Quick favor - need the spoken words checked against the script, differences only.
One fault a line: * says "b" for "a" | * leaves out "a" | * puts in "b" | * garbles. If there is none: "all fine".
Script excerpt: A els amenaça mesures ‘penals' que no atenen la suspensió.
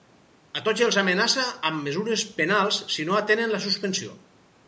* puts in "tots"
* puts in "amb"
* says "si" for "que"